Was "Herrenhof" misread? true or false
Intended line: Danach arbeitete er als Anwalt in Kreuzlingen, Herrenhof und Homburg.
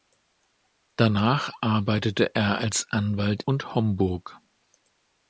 true